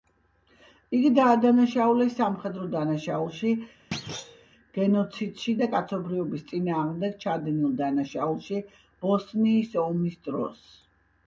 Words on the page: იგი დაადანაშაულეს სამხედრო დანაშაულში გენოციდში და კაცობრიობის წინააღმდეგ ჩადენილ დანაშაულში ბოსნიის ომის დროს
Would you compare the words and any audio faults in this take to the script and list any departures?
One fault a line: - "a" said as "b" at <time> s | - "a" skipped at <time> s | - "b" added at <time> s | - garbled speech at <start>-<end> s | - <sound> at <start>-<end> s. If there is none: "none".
- thud at 3.9-4.5 s